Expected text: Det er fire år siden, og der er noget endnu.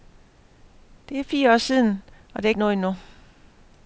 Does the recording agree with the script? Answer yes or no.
yes